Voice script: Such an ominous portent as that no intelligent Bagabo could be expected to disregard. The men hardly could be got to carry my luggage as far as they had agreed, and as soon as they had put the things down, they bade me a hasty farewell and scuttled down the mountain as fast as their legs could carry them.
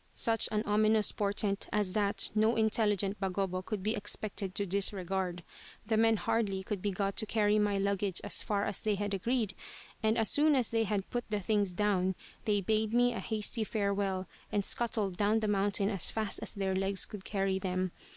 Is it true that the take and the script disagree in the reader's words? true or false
false